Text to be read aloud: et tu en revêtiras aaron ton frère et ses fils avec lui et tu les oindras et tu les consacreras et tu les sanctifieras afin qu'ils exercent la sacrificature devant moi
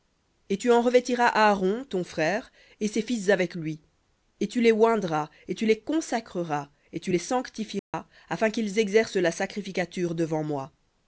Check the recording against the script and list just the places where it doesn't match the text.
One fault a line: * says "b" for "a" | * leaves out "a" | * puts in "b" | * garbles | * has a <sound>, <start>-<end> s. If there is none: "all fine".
* has a dropout, 7.8-7.9 s